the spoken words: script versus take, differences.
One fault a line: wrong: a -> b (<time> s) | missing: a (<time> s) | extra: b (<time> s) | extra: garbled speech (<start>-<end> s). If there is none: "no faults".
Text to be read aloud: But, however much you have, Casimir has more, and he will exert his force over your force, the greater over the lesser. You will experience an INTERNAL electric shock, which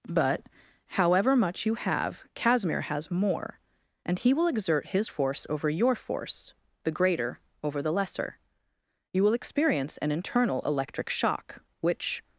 no faults